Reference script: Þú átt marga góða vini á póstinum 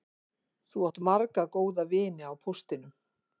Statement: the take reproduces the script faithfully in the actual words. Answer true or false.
true